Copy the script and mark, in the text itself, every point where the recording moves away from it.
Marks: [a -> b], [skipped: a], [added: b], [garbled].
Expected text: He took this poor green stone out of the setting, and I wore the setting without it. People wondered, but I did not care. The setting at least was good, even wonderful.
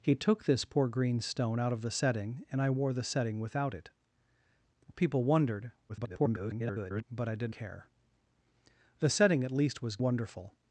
He took this poor green stone out of the setting, and I wore the setting without it. People wondered, [garbled] but I did [skipped: not] care. The setting at least was [skipped: good, even] wonderful.